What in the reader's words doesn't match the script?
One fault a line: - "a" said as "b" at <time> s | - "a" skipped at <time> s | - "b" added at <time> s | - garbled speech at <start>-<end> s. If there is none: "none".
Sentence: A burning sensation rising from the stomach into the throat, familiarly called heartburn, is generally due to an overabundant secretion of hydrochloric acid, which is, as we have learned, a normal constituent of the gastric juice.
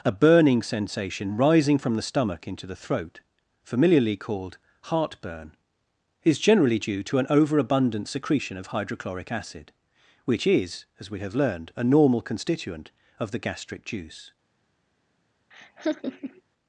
none